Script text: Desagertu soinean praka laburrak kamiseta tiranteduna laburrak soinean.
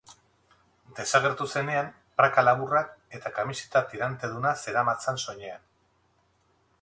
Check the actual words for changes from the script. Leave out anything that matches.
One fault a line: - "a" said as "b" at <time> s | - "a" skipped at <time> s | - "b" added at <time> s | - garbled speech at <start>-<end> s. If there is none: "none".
- "soinean" said as "zenean" at 1.6 s
- "eta" added at 3.2 s
- "laburrak" said as "zeramatzan" at 4.7 s